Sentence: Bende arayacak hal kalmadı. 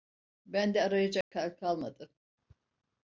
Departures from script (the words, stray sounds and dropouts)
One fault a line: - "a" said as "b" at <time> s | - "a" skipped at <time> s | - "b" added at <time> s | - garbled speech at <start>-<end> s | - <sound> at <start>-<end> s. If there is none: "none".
- dropout at 1.2-1.3 s